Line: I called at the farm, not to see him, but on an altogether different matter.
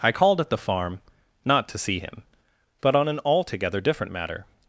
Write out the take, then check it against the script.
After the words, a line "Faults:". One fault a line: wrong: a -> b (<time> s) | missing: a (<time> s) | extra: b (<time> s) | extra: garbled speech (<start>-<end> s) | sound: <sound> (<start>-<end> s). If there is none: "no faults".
I called at the farm, not to see him, but on an altogether different matter.
Faults:
no faults